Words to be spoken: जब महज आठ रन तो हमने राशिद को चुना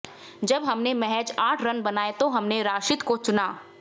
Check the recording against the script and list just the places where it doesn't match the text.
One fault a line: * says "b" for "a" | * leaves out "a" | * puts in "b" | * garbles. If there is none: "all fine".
* puts in "हमने"
* puts in "बनाए"